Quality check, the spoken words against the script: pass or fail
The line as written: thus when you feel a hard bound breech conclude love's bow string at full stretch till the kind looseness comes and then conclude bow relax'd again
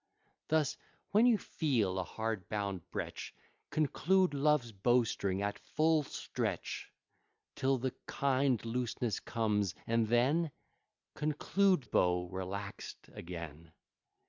pass